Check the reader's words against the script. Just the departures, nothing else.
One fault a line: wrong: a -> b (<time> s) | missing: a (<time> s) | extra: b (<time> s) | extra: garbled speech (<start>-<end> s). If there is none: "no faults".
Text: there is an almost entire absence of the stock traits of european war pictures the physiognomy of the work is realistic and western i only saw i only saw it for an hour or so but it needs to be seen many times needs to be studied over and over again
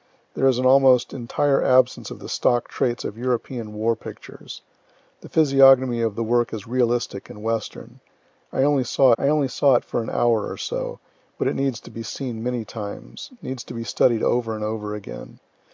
no faults